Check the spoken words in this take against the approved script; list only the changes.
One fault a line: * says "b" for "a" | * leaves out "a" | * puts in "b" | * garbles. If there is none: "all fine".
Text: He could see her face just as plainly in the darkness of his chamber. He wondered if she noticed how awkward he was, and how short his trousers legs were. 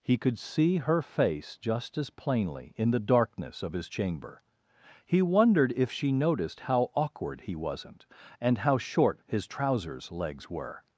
* says "wasn't" for "was"